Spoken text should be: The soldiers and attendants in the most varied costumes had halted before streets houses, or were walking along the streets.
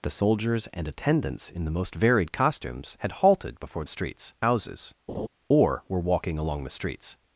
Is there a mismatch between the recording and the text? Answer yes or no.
no